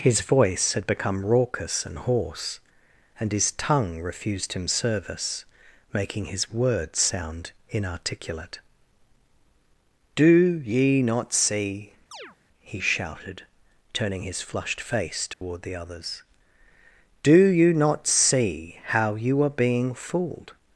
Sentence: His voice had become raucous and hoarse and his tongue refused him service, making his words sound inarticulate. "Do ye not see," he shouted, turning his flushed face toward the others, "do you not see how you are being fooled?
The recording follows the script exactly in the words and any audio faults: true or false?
false